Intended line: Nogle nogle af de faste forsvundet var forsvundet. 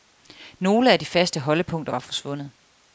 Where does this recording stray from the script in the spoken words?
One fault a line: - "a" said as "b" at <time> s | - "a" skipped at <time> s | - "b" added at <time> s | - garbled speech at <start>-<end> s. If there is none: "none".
- "nogle" skipped at 0.9 s
- "forsvundet" said as "holdepunkter" at 1.4 s